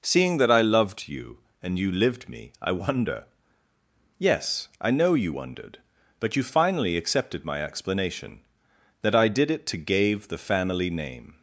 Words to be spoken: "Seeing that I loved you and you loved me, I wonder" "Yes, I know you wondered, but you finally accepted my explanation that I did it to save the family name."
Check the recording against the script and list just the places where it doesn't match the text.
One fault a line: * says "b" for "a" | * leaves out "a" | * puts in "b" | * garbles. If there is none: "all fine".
* says "lived" for "loved"
* says "gave" for "save"